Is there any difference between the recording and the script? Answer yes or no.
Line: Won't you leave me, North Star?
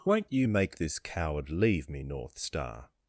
yes